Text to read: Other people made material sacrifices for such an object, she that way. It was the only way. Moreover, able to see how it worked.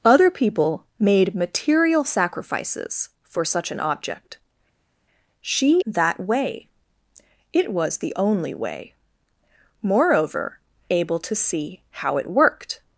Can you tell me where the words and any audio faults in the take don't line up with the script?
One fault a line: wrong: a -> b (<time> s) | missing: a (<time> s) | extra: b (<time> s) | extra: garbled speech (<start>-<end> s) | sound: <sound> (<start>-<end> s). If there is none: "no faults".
no faults